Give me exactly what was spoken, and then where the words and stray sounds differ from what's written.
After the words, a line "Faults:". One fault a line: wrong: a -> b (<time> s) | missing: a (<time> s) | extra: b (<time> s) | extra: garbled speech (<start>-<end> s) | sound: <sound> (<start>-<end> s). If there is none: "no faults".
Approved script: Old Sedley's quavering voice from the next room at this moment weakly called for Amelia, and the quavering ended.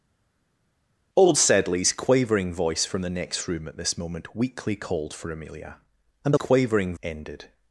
Old Sedley's quavering voice from the next room at this moment weakly called for Amelia, and the quavering ended.
Faults:
no faults